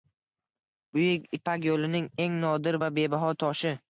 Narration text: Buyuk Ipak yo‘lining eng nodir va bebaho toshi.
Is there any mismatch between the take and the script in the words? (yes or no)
no